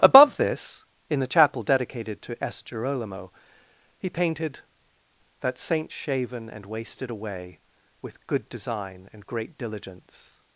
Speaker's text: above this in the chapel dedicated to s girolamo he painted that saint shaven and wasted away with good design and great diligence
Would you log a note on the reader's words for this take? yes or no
no